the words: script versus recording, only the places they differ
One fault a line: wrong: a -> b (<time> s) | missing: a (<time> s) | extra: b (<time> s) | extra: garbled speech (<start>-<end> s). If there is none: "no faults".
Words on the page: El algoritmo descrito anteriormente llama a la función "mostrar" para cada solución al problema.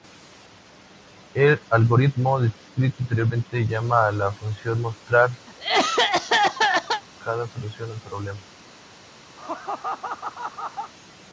missing: para (5.3 s)